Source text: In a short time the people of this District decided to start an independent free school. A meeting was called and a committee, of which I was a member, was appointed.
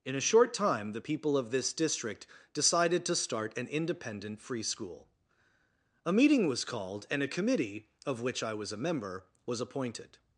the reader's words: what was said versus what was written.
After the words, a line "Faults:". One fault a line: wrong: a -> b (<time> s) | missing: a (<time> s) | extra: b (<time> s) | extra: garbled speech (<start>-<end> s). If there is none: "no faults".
In a short time the people of this District decided to start an independent free school. A meeting was called and a committee, of which I was a member, was appointed.
Faults:
no faults